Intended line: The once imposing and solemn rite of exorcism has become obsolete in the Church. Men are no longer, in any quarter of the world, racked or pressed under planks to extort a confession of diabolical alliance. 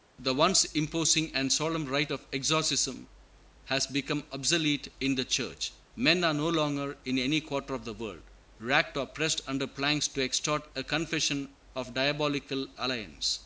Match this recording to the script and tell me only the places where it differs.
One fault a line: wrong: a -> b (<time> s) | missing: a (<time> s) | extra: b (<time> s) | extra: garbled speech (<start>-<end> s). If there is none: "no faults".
no faults